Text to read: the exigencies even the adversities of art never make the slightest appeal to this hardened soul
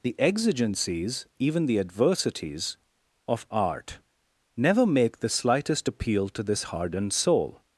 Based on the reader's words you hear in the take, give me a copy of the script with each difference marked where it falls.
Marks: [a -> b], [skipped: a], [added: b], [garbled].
the exigencies even the adversities of art never make the slightest appeal to this hardened soul